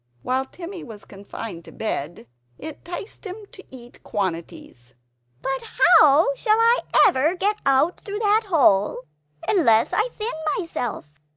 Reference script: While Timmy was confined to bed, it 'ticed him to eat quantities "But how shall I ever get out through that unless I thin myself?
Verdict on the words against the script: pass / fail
fail